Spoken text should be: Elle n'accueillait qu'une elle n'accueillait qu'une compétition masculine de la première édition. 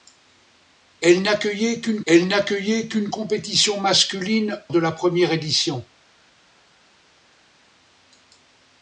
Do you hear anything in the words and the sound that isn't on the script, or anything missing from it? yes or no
no